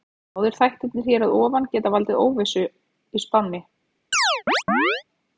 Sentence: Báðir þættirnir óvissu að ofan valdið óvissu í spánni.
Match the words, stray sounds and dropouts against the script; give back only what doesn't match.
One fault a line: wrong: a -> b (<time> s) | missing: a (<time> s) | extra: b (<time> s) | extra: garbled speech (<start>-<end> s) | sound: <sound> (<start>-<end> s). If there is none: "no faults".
wrong: óvissu -> hér (1.1 s)
extra: geta (1.8 s)
sound: chirp (4.1-5.0 s)